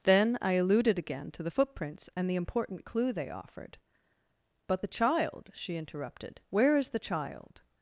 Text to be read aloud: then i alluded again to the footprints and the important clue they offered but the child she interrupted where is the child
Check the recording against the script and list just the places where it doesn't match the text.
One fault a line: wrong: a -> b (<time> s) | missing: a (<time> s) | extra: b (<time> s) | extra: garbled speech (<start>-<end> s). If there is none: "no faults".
no faults